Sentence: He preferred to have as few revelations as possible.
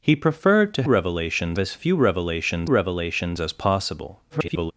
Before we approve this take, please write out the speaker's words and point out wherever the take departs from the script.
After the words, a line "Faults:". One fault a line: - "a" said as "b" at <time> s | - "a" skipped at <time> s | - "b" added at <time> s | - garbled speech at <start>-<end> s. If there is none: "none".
He preferred to revelations as few revelations revelations as possible. [garbled]
Faults:
- "have" said as "revelations" at 0.8 s
- "revelations" added at 2.7 s
- garbled speech at 4.3-4.7 s